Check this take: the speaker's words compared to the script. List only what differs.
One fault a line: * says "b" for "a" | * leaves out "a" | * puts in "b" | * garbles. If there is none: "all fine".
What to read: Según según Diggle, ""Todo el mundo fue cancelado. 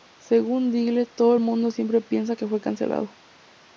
* leaves out "según"
* puts in "siempre piensa que"